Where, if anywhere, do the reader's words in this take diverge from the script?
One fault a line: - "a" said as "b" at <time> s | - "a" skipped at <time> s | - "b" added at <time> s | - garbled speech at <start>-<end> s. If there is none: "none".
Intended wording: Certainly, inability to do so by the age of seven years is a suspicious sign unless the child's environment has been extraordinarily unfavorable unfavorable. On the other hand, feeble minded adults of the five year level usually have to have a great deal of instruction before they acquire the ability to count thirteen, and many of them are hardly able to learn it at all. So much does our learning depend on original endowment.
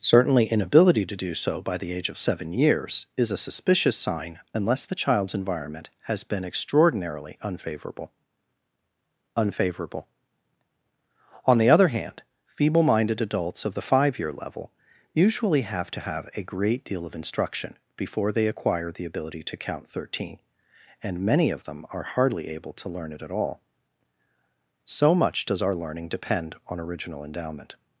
none